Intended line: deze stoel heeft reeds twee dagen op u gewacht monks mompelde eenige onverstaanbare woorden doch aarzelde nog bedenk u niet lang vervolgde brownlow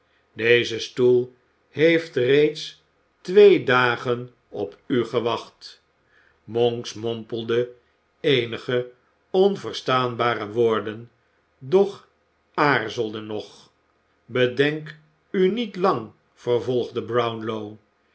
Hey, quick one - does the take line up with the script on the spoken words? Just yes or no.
yes